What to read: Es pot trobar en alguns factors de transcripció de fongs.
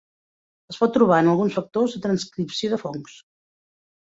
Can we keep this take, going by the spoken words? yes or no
yes